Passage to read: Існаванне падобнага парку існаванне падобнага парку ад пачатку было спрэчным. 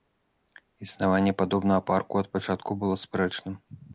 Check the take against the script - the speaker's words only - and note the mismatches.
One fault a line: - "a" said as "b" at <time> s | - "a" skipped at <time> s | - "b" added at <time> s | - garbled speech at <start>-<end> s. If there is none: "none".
- "існаванне падобнага парку" skipped at 2.1 s